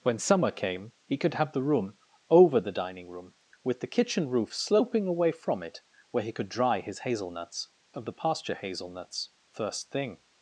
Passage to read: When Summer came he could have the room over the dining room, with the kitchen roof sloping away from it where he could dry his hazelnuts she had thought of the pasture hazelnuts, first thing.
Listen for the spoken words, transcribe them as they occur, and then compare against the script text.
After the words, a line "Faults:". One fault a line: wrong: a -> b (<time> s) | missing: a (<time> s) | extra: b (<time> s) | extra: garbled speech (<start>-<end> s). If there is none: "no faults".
When Summer came he could have the room over the dining room, with the kitchen roof sloping away from it where he could dry his hazelnuts of the pasture hazelnuts, first thing.
Faults:
missing: she had thought (7.7 s)